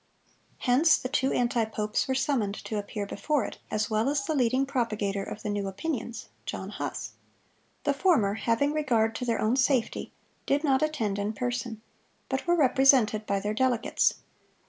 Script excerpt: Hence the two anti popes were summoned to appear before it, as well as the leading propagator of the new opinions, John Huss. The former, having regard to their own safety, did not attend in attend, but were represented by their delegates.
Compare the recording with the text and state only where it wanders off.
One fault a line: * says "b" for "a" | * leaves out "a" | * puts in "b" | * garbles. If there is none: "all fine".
* says "person" for "attend"